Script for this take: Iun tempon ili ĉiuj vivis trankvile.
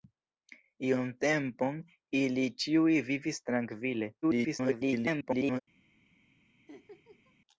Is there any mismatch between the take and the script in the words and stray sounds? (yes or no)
yes